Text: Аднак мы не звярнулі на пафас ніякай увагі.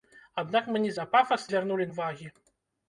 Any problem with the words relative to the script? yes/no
yes